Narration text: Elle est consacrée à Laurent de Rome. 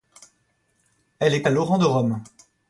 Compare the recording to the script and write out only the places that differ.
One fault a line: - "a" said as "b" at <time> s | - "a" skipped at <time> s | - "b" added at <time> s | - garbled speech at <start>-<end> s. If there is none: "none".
- "consacrée" skipped at 1.4 s